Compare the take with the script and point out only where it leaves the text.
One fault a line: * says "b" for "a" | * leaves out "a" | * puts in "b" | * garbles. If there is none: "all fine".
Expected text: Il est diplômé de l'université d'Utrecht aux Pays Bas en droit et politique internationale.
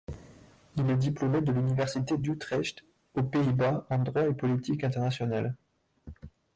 all fine